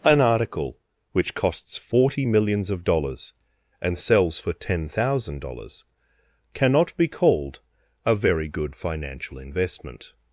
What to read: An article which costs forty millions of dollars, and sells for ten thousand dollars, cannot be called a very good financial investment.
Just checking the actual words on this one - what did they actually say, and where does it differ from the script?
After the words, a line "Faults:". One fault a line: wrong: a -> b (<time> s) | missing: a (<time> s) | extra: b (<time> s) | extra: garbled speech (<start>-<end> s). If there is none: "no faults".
An article which costs forty millions of dollars, and sells for ten thousand dollars, cannot be called a very good financial investment.
Faults:
no faults